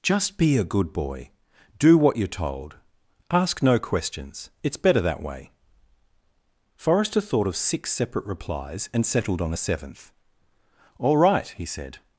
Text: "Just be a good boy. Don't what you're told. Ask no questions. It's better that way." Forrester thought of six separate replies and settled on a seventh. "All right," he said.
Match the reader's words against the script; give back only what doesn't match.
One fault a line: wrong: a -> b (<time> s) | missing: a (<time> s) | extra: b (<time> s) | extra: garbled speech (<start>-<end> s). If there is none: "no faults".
wrong: Don't -> Do (1.8 s)